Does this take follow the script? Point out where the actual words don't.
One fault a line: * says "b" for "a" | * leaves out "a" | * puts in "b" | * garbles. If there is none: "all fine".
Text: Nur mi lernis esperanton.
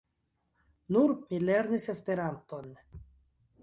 all fine